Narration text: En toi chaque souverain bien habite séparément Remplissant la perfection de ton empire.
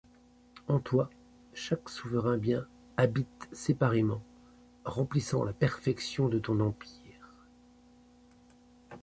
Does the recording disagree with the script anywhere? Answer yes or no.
no